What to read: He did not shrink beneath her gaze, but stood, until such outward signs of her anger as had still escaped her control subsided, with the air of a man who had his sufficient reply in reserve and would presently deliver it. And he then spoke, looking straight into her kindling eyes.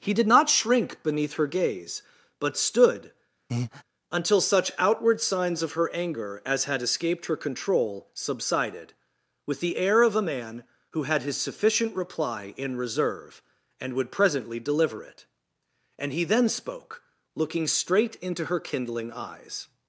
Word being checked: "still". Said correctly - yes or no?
no